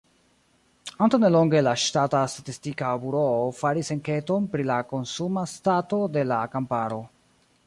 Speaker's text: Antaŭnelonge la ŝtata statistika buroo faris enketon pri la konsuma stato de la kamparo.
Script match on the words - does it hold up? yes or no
yes